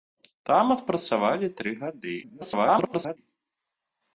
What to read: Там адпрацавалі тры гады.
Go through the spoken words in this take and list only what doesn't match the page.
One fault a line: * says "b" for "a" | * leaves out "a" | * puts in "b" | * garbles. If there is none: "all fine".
* garbles